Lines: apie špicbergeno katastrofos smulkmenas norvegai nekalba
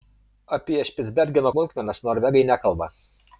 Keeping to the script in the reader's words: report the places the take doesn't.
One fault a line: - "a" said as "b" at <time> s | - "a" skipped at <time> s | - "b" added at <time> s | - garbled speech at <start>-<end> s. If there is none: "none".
- "katastrofos" skipped at 1.5 s